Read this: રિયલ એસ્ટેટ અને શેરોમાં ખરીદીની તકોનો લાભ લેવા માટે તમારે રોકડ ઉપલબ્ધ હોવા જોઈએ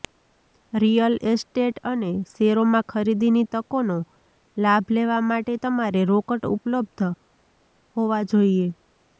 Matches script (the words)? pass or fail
pass